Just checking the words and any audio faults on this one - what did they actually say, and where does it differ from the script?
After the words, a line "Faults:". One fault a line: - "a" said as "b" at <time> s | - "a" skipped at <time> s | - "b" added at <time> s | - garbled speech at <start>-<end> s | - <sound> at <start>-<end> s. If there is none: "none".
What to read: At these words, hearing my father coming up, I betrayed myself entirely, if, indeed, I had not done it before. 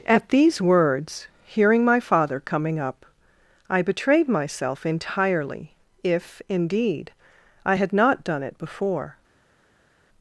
At these words, hearing my father coming up, I betrayed myself entirely, if, indeed, I had not done it before.
Faults:
none